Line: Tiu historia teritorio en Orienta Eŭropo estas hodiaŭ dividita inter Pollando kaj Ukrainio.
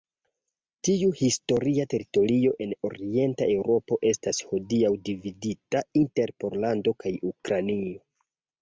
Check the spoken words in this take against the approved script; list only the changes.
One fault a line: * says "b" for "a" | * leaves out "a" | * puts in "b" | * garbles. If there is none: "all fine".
all fine